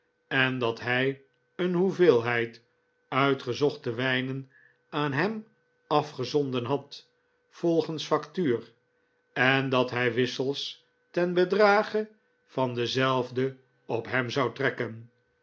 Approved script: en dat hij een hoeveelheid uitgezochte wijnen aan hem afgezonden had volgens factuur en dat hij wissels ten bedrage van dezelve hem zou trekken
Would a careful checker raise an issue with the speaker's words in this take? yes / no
yes